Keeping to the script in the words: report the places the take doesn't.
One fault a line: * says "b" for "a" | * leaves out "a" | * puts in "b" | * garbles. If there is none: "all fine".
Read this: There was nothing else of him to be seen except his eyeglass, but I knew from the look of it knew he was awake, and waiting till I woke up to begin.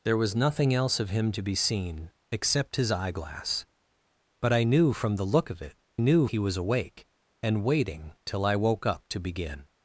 all fine